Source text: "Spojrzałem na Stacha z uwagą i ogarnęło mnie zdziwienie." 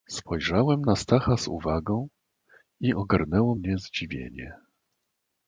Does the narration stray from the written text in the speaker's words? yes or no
no